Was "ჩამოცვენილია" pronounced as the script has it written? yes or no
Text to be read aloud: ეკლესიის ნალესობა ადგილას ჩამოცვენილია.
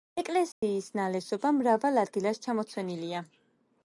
yes